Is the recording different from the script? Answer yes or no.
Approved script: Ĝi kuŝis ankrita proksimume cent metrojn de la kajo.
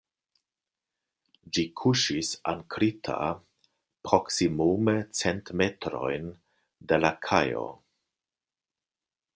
no